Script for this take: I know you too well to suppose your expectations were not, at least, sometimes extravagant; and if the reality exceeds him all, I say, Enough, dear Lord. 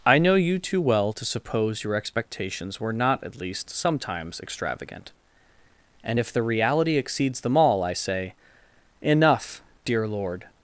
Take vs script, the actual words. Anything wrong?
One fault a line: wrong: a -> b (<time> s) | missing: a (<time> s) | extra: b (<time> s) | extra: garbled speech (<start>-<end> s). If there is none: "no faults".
wrong: him -> them (7.4 s)